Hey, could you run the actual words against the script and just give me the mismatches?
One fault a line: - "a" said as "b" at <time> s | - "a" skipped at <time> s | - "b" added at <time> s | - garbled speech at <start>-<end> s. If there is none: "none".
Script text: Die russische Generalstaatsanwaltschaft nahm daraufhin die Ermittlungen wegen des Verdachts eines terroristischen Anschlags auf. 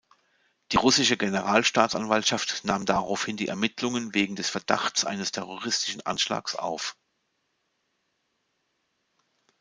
none